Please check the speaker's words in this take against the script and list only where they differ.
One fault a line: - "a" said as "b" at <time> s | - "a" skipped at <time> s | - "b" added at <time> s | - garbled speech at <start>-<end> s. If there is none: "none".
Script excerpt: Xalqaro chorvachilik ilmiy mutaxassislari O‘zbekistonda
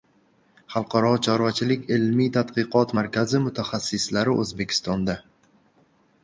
- "tadqiqot markazi" added at 2.4 s